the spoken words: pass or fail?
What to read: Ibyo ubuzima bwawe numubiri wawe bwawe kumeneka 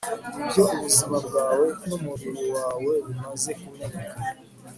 fail